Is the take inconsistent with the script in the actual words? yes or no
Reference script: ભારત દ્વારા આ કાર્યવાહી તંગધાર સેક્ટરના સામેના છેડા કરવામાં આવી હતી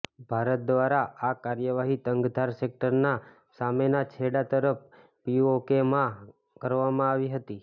yes